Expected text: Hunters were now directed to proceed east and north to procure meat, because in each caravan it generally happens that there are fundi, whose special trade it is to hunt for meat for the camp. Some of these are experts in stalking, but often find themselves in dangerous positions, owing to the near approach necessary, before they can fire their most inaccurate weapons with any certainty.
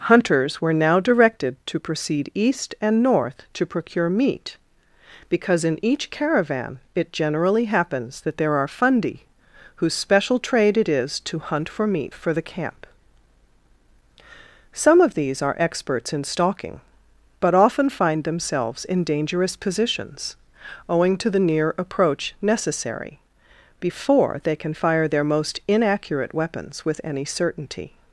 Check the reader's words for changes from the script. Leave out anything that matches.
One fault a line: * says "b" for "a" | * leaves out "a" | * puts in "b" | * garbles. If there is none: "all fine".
all fine